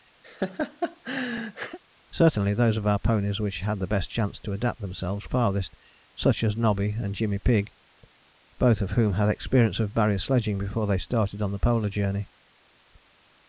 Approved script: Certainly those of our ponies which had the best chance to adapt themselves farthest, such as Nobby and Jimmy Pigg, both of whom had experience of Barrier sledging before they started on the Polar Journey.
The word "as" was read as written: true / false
true